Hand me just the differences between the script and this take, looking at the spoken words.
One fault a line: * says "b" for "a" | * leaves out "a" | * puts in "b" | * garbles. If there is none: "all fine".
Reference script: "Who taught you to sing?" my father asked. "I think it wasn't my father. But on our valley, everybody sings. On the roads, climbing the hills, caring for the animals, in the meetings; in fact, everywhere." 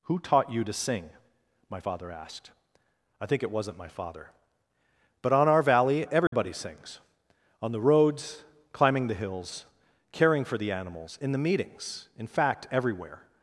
all fine